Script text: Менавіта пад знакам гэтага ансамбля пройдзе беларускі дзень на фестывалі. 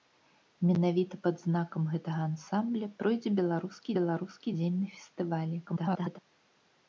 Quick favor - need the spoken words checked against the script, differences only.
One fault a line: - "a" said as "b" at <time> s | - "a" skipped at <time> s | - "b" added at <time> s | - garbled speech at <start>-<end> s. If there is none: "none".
- "беларускі" added at 4.0 s
- garbled speech at 5.7-6.2 s